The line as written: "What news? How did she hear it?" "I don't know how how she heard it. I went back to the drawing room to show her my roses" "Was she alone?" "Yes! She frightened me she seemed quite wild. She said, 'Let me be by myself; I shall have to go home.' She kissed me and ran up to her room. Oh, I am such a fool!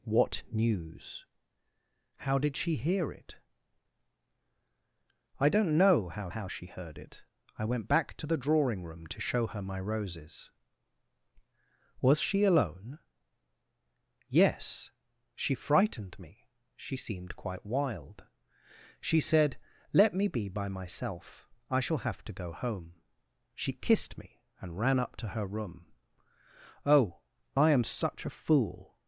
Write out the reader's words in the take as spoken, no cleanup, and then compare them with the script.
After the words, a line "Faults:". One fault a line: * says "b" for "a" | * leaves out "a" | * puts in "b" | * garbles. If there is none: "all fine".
"What news? How did she hear it?" "I don't know how how she heard it. I went back to the drawing room to show her my roses" "Was she alone?" "Yes! She frightened me she seemed quite wild. She said, 'Let me be by myself; I shall have to go home.' She kissed me and ran up to her room. Oh, I am such a fool!
Faults:
all fine